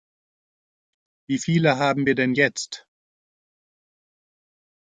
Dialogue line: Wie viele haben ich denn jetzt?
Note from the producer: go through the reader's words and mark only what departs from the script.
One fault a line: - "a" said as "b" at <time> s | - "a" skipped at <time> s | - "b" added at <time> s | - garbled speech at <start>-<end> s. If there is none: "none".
- "ich" said as "wir" at 2.1 s